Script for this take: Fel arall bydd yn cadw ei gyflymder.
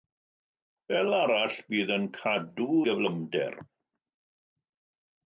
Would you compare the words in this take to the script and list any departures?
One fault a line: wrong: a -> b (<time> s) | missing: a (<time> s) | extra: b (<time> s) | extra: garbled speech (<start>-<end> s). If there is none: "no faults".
missing: ei (2.7 s)